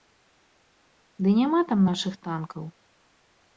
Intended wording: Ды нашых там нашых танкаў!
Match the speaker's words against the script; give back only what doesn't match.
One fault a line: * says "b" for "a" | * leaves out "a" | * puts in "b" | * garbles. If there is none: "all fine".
* says "няма" for "нашых"